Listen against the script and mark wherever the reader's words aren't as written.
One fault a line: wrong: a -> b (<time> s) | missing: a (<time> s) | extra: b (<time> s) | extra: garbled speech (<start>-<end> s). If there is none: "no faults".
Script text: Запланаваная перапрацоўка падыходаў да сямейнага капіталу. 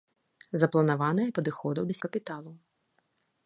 missing: перапрацоўка (1.2 s)
missing: сямейнага (1.9 s)